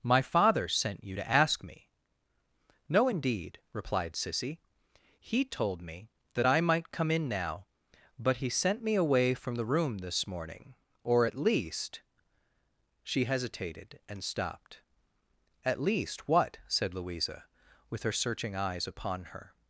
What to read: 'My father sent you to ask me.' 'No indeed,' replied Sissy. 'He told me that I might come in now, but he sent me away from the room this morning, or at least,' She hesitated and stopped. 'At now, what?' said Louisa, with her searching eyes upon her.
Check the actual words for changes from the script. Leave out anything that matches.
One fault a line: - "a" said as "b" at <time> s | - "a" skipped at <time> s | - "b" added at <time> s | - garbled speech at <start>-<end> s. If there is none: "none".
- "now" said as "least" at 15.8 s